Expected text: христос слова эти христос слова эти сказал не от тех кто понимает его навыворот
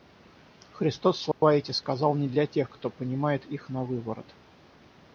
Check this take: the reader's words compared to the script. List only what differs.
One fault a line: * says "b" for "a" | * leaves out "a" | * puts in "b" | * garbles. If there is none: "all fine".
* leaves out "христос слова эти"
* says "для" for "от"
* says "их" for "его"